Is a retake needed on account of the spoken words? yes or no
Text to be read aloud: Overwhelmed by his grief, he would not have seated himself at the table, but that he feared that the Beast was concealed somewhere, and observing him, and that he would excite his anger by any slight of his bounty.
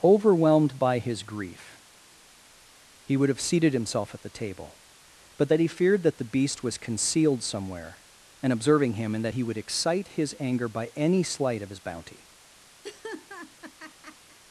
yes